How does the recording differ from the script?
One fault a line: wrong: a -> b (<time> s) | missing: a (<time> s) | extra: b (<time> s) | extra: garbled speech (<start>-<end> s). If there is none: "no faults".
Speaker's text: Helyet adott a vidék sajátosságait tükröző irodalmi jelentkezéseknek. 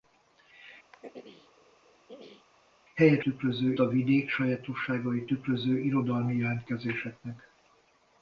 wrong: adott -> tükröző (3.2 s)